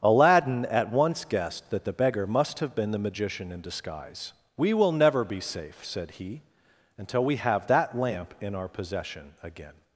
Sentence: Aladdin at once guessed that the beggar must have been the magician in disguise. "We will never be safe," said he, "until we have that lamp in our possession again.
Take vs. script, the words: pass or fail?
pass